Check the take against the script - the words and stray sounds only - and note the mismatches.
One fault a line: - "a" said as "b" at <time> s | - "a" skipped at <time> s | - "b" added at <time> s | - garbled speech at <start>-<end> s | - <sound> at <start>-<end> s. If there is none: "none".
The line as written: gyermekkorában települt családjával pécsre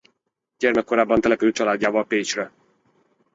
none